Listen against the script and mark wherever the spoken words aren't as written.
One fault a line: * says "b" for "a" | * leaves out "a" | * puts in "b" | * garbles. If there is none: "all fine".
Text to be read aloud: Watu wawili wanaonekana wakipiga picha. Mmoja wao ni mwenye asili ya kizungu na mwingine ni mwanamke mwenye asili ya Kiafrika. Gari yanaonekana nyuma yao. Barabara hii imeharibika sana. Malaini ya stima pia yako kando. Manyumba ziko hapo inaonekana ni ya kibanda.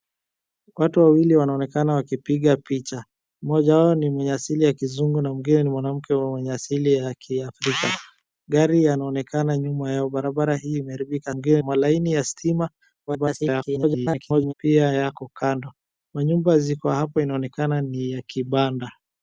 * says "mwingine" for "sana"
* garbles